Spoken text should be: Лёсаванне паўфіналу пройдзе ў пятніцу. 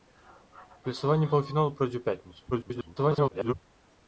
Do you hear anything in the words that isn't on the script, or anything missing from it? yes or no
yes